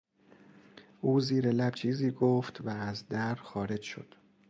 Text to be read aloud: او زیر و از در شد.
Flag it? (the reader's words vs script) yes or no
yes